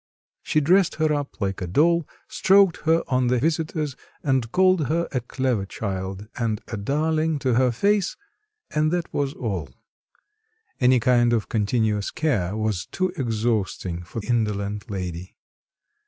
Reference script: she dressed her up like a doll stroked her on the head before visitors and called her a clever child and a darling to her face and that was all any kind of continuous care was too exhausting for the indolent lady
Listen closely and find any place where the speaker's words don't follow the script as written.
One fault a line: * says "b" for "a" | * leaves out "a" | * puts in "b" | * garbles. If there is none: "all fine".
* leaves out "head before"
* leaves out "the"